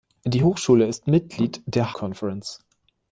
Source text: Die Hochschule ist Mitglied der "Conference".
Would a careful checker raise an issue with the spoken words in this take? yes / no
no